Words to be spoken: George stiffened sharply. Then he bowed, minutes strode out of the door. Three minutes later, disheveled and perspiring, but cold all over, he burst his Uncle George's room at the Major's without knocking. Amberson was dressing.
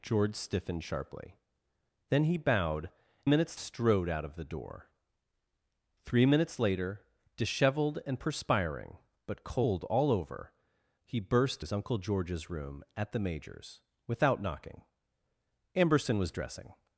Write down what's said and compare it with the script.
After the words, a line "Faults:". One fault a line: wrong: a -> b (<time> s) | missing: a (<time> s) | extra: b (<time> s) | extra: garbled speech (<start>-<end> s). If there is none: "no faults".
George stiffened sharply. Then he bowed, minutes strode out of the door. Three minutes later, disheveled and perspiring, but cold all over, he burst his Uncle George's room at the Major's without knocking. Amberson was dressing.
Faults:
no faults